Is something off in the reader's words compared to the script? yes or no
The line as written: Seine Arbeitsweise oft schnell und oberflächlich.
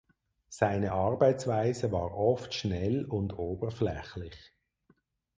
yes